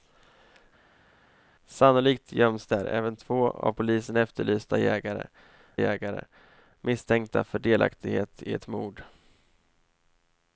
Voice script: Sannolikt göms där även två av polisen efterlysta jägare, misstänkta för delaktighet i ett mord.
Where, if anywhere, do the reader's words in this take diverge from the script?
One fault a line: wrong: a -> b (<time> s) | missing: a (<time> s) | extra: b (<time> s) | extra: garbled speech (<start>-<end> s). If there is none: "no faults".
extra: jägare (5.8 s)